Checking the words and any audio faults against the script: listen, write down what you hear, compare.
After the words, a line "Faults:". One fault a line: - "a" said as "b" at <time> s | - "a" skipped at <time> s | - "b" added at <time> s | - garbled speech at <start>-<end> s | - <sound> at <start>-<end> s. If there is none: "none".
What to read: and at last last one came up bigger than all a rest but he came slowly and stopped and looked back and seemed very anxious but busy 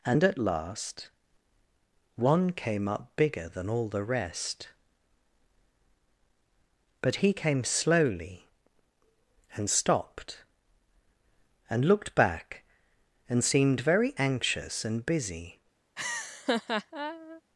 and at last one came up bigger than all the rest but he came slowly and stopped and looked back and seemed very anxious and busy
Faults:
- "last" skipped at 1.1 s
- "a" said as "the" at 3.9 s
- "but" said as "and" at 14.9 s
- laugh at 16.0-17.4 s